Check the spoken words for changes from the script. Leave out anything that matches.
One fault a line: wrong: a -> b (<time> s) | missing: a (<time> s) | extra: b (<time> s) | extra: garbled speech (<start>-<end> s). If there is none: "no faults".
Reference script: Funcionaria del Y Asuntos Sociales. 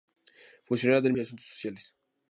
no faults